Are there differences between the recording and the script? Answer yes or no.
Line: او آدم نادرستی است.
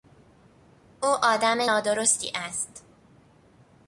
no